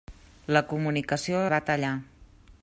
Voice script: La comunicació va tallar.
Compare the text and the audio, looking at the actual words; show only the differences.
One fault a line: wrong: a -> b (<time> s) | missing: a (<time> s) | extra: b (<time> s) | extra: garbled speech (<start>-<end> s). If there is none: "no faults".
no faults